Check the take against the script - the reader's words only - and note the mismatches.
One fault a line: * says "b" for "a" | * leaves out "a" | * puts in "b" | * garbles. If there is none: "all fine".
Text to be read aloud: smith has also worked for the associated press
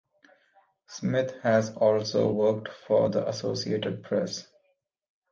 all fine